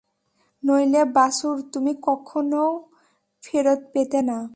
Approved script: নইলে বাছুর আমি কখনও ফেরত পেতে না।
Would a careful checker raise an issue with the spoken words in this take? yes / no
yes